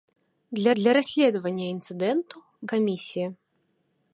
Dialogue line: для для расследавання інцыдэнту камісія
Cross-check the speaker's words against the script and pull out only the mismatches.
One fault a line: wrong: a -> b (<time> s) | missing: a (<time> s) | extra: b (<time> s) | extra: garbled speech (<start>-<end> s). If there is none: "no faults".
no faults